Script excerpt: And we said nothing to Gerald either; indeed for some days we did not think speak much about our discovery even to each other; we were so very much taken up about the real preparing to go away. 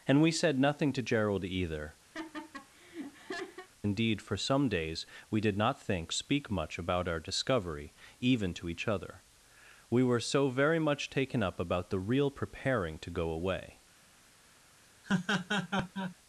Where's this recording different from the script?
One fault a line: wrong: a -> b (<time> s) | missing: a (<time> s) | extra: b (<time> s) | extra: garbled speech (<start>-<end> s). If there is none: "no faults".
no faults